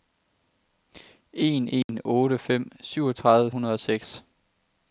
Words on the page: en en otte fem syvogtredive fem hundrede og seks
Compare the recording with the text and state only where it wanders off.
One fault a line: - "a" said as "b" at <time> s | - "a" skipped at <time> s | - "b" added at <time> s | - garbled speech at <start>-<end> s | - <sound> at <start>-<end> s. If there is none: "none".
- dropout at 1.8-1.9 s
- "fem" skipped at 3.5 s